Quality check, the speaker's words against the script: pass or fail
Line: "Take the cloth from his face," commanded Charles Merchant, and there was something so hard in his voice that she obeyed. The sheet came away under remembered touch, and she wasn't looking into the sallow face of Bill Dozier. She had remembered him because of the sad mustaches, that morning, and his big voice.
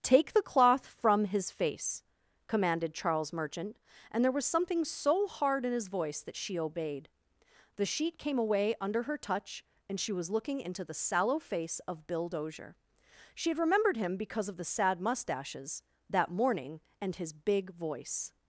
fail